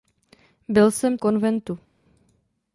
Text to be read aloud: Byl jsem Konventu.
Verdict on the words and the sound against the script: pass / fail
pass